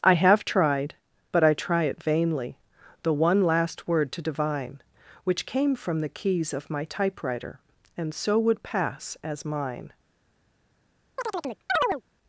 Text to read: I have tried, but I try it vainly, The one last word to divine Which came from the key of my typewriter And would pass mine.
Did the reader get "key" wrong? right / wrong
wrong